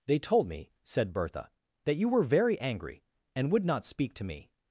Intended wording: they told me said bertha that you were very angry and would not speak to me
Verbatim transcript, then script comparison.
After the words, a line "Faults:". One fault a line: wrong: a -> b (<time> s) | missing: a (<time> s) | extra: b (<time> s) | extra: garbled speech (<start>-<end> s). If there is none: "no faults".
they told me said bertha that you were very angry and would not speak to me
Faults:
no faults